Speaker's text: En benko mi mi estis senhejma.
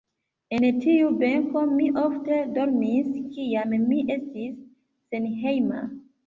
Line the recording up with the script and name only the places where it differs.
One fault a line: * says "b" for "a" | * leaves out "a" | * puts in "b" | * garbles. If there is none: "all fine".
* puts in "tiu"
* puts in "ofte dormis kiam"